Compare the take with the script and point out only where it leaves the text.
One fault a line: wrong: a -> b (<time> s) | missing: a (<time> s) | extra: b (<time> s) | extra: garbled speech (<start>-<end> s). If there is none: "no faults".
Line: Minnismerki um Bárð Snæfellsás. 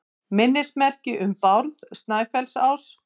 no faults